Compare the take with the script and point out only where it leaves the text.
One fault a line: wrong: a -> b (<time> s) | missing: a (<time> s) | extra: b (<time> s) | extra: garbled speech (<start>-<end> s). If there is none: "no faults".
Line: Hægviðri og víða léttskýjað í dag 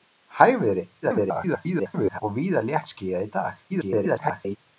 extra: garbled speech (1.0-2.2 s)
extra: garbled speech (3.7-4.6 s)